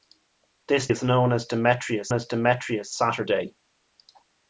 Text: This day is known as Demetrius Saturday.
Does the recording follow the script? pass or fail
fail